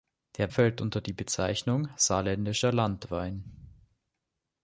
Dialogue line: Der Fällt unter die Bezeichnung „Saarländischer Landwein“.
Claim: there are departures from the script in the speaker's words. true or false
false